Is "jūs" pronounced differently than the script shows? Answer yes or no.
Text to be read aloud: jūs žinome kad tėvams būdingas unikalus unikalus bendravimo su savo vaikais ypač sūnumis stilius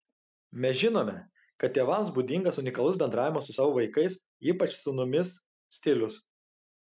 yes